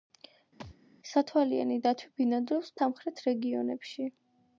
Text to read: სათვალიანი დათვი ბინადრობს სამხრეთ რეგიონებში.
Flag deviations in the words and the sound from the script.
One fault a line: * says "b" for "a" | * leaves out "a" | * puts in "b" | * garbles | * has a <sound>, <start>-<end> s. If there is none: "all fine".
* has a thud, 0.6-0.8 s